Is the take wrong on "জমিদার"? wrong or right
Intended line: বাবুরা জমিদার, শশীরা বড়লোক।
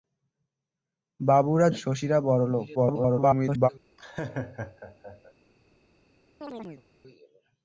wrong